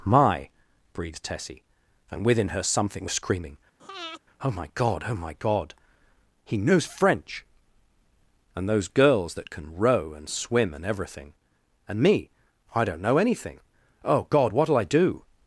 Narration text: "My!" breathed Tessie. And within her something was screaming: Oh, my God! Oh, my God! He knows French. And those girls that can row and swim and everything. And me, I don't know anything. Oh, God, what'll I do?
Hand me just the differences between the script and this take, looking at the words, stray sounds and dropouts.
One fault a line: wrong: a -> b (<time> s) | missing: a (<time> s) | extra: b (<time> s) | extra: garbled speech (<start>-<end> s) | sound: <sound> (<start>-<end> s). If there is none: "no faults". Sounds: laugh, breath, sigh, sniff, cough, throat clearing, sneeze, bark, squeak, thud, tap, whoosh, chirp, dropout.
sound: breath (3.8-4.2 s)